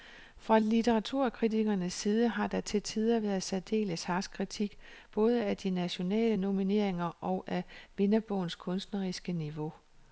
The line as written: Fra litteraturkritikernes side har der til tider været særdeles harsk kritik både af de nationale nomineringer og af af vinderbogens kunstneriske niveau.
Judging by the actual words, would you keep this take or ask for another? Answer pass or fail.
fail